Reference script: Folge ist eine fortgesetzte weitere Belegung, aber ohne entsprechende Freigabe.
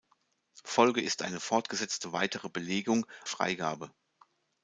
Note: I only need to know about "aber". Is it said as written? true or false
false